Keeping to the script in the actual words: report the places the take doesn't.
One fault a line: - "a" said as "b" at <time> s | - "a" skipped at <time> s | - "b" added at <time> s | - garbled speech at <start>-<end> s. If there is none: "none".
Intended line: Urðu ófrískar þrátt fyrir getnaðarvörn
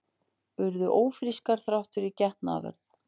none